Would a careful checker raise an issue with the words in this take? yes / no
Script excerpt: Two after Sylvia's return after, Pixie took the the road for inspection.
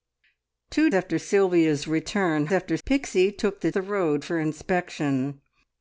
no